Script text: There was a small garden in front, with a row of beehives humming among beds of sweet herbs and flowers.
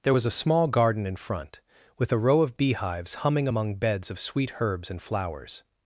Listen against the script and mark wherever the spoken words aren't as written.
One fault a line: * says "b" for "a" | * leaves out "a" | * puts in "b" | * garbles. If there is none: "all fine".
all fine